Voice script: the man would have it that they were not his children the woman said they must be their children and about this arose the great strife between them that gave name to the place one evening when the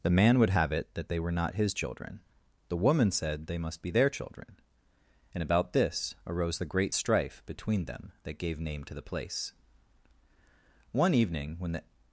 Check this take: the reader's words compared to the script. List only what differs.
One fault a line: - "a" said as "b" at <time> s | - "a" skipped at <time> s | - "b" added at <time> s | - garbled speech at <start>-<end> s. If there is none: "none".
none